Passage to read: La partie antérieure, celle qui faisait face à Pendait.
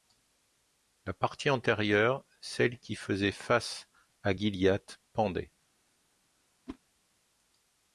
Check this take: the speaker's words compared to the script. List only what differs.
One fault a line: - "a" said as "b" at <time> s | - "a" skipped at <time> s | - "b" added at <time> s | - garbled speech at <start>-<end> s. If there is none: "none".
- "Gilliatt" added at 4.3 s